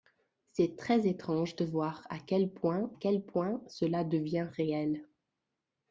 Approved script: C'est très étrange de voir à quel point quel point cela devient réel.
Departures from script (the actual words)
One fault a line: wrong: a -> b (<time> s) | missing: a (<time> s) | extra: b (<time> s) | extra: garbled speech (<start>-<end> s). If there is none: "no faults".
no faults